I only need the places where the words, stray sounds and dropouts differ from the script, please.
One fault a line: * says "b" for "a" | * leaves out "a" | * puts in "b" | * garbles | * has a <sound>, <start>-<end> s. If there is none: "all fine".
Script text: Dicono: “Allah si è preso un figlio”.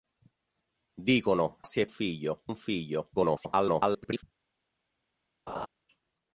* leaves out "Allah"
* says "figlio" for "preso"
* garbles
* has a laugh, 5.5-5.7 s